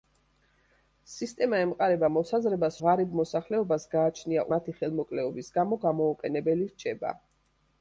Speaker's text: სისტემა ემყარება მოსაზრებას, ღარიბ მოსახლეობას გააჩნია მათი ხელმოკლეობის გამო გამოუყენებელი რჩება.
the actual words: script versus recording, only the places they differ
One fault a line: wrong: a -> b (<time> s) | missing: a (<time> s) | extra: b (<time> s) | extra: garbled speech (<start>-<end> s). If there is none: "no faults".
no faults